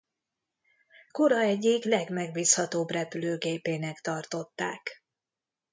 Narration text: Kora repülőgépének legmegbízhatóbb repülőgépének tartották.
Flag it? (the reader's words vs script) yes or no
yes